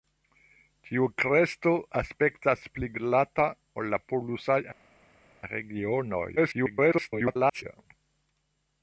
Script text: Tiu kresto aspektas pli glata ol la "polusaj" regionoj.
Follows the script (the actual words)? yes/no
no